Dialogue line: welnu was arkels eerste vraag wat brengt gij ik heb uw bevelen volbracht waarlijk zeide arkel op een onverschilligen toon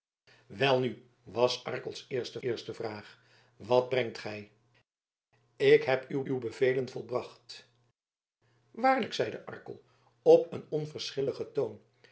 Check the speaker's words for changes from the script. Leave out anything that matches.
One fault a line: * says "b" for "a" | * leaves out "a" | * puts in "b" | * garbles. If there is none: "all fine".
* puts in "eerste"
* puts in "uw"